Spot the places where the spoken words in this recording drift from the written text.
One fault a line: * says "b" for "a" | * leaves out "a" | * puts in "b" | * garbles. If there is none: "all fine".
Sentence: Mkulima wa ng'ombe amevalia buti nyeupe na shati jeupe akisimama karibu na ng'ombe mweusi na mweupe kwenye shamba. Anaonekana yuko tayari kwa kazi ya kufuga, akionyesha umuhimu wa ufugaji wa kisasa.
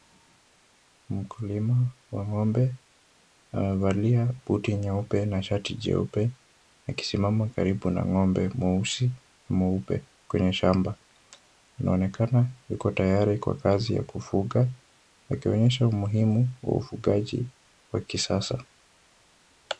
all fine